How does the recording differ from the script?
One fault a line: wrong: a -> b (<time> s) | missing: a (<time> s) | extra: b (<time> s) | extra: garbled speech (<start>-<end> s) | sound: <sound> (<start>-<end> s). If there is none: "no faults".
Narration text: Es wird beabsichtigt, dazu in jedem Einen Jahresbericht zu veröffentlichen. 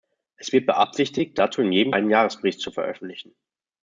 no faults